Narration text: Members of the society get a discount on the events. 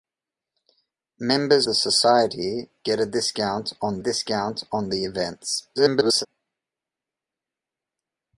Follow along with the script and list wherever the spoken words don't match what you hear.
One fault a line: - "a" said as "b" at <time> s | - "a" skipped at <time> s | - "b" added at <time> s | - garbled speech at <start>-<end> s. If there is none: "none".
- "of" skipped at 1.7 s
- "discount on" added at 4.0 s
- garbled speech at 5.8-6.3 s